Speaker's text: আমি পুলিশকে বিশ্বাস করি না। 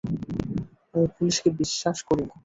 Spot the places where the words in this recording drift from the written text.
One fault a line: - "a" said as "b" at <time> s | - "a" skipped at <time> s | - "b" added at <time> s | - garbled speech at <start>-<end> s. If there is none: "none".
none